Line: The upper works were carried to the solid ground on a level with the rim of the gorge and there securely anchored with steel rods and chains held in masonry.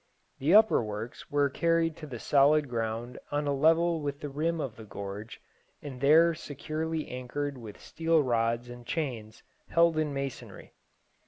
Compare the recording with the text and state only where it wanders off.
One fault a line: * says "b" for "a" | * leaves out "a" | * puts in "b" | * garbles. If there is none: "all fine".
all fine